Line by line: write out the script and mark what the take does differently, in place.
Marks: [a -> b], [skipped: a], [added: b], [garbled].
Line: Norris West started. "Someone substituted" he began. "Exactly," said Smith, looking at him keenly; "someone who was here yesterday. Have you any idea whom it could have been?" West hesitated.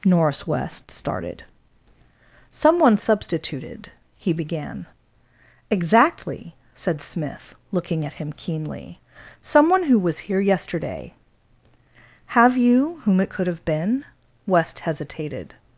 Norris West started. "Someone substituted" he began. "Exactly," said Smith, looking at him keenly; "someone who was here yesterday. Have you [skipped: any idea] whom it could have been?" West hesitated.